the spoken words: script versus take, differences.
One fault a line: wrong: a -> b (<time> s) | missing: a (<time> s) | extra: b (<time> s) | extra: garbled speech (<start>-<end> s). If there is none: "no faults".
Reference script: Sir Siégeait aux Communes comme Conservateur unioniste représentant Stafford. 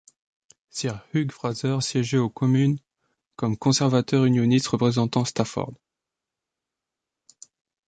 extra: Hugh Fraser (1.1 s)